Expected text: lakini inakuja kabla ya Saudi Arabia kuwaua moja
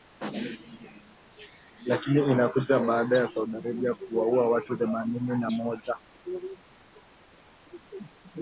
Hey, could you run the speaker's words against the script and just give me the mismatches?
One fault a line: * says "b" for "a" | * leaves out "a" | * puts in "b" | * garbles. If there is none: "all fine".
* says "baada" for "kabla"
* puts in "watu themanini na"